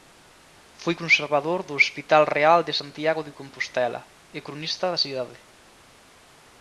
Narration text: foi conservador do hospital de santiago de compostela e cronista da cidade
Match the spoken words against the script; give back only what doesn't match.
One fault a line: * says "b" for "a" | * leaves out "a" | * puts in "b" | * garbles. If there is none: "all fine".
* puts in "real"